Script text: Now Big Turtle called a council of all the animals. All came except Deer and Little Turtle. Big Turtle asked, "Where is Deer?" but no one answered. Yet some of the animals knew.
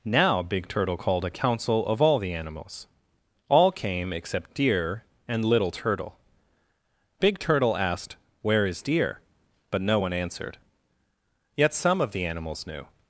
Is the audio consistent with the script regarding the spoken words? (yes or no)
yes